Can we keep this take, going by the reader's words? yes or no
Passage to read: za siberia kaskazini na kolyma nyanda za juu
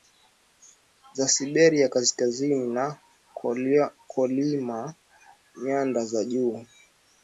yes